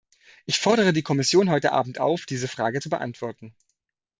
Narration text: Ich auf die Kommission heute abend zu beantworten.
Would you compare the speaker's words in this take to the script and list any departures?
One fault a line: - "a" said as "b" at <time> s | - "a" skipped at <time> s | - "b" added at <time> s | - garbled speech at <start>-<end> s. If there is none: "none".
- "auf" said as "fordere" at 0.6 s
- "auf diese Frage" added at 2.0 s